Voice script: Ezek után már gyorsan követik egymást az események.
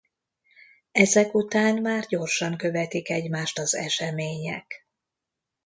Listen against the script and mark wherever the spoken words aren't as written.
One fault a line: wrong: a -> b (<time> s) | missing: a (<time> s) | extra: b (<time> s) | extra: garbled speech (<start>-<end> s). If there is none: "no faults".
no faults